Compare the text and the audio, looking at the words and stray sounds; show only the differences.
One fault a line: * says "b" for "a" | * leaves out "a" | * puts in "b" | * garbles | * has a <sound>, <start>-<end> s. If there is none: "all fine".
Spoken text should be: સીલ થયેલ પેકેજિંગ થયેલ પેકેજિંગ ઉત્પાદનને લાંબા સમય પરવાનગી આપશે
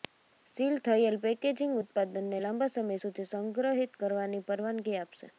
* leaves out "થયેલ પેકેજિંગ"
* puts in "સુધી સંગ્રહિત કરવાની"